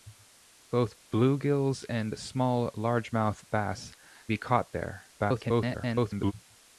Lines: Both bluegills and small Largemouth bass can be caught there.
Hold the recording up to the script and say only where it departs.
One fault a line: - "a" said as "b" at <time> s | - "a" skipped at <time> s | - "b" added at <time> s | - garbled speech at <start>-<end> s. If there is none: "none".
- "can" skipped at 3.9 s
- garbled speech at 5.2-6.3 s